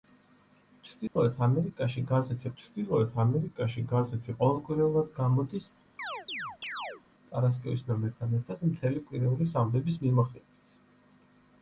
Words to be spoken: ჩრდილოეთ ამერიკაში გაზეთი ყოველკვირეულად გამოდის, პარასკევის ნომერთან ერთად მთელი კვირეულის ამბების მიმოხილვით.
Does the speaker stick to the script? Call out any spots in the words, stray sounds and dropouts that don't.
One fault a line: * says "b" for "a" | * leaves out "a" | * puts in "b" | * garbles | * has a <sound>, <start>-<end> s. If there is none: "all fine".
* has a dropout, 1.1-1.2 s
* puts in "ჩრდილოეთ ამერიკაში გაზეთი"
* has a chirp, 6.0-7.0 s